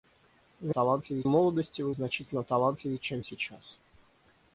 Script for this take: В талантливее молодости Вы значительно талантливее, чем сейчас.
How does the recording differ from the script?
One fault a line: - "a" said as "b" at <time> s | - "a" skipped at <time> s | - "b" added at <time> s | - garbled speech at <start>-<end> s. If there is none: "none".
none